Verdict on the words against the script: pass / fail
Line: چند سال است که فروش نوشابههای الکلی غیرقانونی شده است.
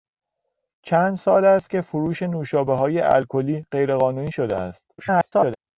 fail